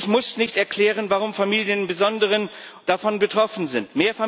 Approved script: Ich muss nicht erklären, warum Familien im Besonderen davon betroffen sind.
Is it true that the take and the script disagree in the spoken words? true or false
false